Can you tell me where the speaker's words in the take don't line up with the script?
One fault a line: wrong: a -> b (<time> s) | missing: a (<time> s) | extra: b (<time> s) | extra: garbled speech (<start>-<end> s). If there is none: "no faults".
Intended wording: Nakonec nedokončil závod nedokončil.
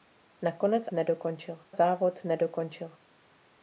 no faults